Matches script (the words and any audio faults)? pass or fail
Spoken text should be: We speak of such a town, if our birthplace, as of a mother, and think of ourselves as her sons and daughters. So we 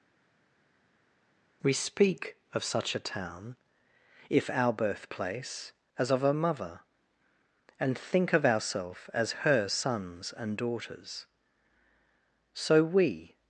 pass